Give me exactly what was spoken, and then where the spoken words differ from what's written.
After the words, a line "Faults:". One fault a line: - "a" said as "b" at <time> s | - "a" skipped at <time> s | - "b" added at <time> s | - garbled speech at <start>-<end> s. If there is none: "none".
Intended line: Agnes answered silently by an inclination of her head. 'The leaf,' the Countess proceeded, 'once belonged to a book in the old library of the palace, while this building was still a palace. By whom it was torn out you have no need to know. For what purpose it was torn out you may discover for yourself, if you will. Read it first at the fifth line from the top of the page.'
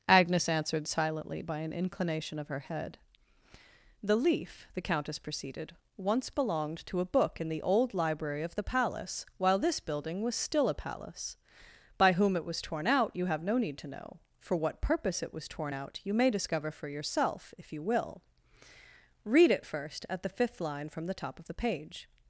Agnes answered silently by an inclination of her head. 'The leaf,' the Countess proceeded, 'once belonged to a book in the old library of the palace, while this building was still a palace. By whom it was torn out you have no need to know. For what purpose it was torn out you may discover for yourself, if you will. Read it first at the fifth line from the top of the page.'
Faults:
none